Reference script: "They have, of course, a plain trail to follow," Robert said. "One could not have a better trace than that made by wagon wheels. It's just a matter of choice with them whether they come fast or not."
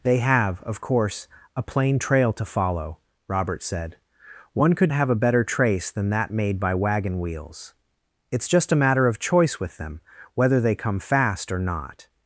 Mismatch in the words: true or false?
true